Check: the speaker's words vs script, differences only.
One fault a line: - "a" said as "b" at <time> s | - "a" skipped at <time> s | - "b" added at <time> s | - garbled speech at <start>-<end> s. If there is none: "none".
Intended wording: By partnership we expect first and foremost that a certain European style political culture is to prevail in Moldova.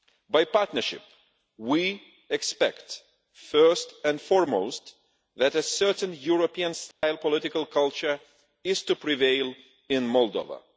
none